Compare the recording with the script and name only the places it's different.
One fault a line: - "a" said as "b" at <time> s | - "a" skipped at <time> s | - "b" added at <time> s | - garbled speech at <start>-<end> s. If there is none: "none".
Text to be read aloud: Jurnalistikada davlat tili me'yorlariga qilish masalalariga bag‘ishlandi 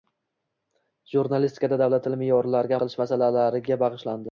none